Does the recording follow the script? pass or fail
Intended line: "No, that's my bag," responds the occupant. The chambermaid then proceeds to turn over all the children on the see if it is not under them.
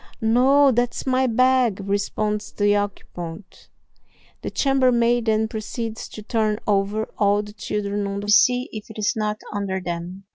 pass